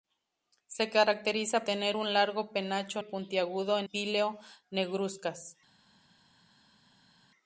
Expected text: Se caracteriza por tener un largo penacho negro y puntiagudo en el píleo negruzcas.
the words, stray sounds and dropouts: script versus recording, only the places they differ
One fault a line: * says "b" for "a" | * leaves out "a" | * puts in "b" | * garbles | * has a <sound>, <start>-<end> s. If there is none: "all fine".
* leaves out "por"
* leaves out "negro"
* leaves out "el"